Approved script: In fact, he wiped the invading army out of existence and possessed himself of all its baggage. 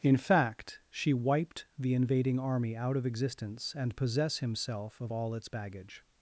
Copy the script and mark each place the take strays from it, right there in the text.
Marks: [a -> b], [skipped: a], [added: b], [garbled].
In fact, [he -> she] wiped the invading army out of existence and [possessed -> possess] himself of all its baggage.